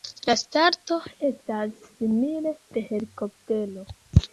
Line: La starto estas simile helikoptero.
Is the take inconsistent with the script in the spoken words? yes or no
yes